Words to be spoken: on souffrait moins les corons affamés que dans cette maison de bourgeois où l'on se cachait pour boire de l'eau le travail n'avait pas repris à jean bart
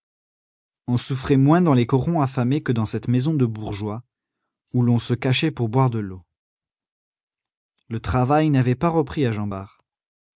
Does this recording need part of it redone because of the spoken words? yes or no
yes